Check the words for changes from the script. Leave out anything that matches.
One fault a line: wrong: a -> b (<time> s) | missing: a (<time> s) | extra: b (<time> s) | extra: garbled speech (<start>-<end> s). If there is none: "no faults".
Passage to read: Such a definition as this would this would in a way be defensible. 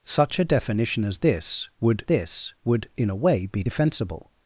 no faults